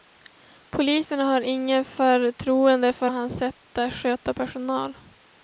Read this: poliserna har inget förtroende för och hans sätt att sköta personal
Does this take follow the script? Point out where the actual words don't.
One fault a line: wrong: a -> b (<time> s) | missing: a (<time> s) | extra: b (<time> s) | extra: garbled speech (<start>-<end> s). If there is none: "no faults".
no faults